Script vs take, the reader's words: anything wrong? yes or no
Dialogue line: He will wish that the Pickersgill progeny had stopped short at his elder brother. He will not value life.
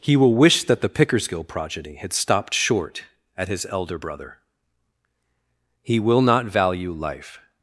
no